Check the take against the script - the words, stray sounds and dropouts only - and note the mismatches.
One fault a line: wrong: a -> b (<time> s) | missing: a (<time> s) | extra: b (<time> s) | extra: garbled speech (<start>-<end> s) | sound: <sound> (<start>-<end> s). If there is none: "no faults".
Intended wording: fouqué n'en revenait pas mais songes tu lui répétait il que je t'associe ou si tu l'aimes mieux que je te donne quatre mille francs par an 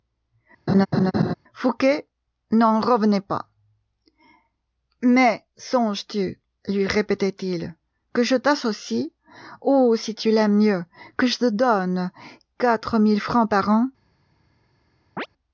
sound: laugh (0.7-1.3 s)
sound: chirp (15.2-15.3 s)